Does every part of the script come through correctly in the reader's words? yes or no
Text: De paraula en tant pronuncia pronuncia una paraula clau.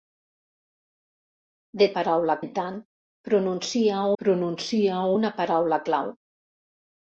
yes